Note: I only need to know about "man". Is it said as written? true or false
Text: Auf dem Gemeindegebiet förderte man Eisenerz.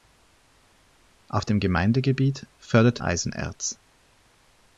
false